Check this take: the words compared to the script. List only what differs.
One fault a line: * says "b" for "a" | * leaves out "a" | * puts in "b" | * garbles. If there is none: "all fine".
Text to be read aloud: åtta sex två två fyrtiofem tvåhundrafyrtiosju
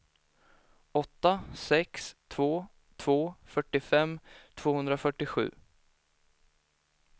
all fine